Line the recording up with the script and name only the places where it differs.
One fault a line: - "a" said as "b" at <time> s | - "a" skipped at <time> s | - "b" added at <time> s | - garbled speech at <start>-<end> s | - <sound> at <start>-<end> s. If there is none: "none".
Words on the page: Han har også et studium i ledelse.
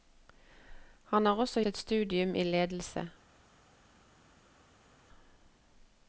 none